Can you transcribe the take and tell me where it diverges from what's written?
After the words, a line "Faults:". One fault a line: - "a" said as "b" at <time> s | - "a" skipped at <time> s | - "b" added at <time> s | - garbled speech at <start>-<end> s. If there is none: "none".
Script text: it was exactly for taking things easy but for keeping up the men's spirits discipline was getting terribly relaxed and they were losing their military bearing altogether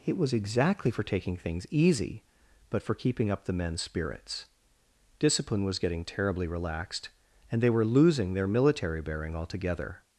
it was exactly for taking things easy but for keeping up the men's spirits discipline was getting terribly relaxed and they were losing their military bearing altogether
Faults:
none